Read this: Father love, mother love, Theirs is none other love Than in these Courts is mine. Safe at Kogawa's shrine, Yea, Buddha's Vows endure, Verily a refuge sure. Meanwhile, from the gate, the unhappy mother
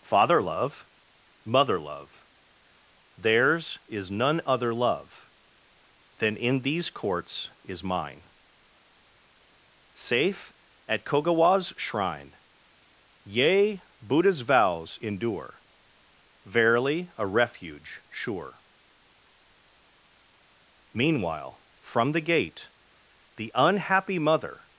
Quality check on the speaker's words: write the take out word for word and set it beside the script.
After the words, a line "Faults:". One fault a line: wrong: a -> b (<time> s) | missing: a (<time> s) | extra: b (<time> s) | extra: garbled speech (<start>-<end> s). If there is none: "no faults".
Father love, mother love, Theirs is none other love Than in these Courts is mine. Safe at Kogawa's shrine, Yea, Buddha's Vows endure, Verily a refuge sure. Meanwhile, from the gate, the unhappy mother
Faults:
no faults